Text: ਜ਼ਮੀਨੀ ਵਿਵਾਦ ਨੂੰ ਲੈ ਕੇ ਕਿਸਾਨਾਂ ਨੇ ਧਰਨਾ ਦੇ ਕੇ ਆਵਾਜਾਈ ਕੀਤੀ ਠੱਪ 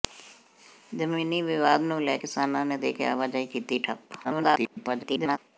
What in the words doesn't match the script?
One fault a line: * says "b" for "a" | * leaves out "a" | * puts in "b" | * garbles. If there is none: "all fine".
* leaves out "ਕੇ"
* leaves out "ਧਰਨਾ"
* garbles